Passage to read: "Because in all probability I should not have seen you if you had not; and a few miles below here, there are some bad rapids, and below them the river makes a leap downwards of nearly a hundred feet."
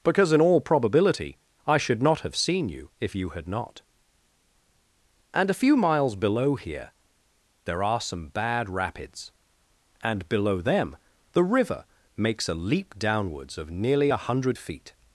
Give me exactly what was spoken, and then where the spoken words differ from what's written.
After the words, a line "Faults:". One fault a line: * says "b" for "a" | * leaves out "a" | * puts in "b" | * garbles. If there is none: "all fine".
"Because in all probability I should not have seen you if you had not; and a few miles below here, there are some bad rapids, and below them the river makes a leap downwards of nearly a hundred feet."
Faults:
all fine